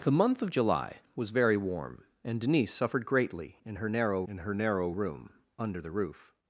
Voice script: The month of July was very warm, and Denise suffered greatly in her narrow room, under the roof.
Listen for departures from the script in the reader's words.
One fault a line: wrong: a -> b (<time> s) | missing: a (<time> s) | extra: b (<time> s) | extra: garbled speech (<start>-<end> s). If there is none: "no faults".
extra: in her narrow (4.2 s)